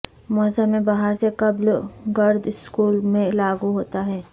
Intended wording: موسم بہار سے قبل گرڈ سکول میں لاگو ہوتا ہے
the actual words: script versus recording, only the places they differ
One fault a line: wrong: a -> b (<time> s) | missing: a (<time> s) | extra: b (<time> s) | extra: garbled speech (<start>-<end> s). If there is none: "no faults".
no faults